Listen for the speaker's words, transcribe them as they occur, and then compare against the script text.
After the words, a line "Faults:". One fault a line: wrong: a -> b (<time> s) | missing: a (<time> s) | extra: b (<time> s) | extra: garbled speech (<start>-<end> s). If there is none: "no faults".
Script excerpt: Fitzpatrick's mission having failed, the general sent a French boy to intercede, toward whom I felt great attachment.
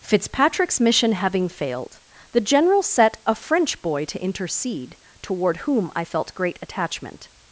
Fitzpatrick's mission having failed, the general set a French boy to intercede, toward whom I felt great attachment.
Faults:
wrong: sent -> set (2.8 s)